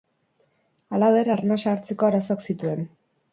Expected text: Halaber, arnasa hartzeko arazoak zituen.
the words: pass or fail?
pass